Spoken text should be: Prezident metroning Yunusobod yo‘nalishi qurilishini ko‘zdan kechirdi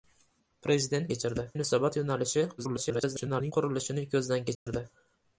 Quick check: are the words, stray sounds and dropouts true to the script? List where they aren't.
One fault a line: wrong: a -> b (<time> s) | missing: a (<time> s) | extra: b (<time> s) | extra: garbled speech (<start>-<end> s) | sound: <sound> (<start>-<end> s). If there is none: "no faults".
wrong: metroning -> kechirdi (1.1 s)
extra: garbled speech (2.6-3.5 s)
sound: dropout (4.5-4.7 s)